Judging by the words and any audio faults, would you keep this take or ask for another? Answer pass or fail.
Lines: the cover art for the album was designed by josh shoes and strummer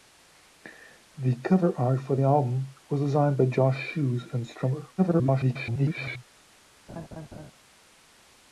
fail